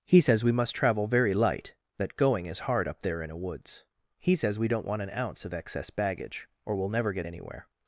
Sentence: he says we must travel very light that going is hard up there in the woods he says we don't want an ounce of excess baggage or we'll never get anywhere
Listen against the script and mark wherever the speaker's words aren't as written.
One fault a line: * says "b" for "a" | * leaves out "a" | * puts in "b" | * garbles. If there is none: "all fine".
* says "a" for "the"